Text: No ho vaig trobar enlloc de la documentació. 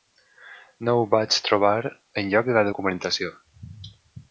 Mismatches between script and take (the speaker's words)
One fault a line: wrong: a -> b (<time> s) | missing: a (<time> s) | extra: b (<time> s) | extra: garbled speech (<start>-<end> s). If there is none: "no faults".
no faults